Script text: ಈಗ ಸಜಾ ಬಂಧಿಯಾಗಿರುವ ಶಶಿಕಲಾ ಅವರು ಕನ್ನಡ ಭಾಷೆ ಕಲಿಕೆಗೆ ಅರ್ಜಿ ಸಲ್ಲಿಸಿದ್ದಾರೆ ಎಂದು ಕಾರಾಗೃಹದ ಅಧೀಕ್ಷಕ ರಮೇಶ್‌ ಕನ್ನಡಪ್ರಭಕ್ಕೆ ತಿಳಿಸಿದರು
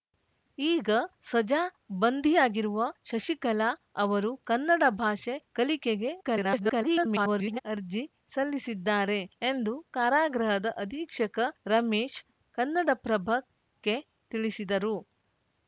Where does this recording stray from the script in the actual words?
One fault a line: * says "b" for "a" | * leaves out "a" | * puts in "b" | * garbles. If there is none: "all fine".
* garbles